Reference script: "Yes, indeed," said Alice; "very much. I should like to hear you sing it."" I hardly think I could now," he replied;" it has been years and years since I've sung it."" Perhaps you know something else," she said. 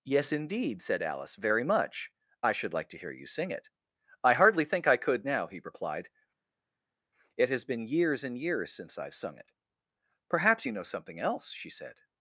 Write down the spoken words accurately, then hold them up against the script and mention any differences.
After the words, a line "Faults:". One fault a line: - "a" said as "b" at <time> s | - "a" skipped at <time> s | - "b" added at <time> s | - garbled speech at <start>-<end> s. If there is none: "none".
"Yes, indeed," said Alice; "very much. I should like to hear you sing it."" I hardly think I could now," he replied;" it has been years and years since I've sung it."" Perhaps you know something else," she said.
Faults:
none